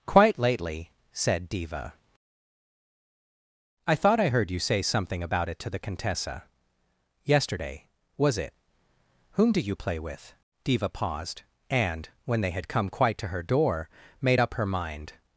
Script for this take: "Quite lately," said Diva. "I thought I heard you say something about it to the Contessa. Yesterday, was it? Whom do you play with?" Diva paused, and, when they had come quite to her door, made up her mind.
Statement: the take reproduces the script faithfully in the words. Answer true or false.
true